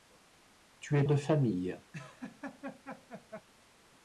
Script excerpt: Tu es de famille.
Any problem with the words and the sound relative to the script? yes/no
yes